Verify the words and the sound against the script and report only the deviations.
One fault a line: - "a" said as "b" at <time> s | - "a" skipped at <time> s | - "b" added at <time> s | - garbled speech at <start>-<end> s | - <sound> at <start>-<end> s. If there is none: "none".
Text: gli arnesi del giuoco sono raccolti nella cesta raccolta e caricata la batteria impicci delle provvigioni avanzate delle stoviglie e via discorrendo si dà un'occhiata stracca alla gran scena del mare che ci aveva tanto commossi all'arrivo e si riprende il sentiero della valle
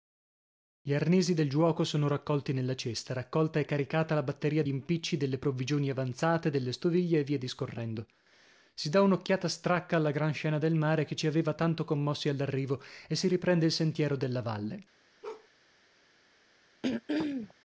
- bark at 15.2-15.5 s
- throat clearing at 16.8-17.5 s